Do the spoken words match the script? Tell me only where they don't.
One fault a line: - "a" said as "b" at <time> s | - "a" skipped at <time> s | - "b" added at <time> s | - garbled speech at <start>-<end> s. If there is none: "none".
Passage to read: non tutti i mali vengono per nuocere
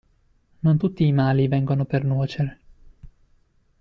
none